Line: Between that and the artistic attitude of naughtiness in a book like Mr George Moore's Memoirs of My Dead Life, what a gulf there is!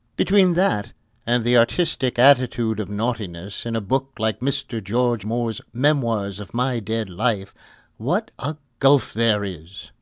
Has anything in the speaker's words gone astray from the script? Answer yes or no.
no